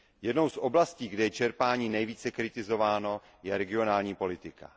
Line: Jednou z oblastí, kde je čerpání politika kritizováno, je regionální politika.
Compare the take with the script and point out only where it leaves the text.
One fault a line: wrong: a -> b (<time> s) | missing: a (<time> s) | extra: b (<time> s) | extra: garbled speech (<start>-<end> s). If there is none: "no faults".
wrong: politika -> nejvíce (1.9 s)